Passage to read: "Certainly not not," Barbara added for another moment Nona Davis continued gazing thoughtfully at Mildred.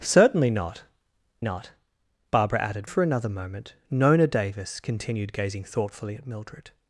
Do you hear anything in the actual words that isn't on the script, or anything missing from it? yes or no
no